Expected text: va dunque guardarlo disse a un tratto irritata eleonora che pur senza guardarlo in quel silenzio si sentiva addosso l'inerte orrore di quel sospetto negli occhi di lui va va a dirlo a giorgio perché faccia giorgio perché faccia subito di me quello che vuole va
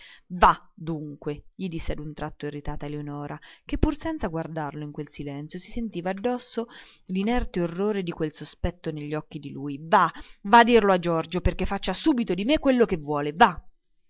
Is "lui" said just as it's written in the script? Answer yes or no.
yes